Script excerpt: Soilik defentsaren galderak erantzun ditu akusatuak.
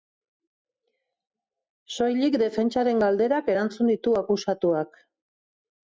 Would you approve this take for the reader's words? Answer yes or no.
yes